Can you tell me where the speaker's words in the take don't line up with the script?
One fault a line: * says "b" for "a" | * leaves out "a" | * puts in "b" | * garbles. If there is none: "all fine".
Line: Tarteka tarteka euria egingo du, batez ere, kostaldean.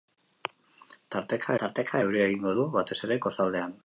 all fine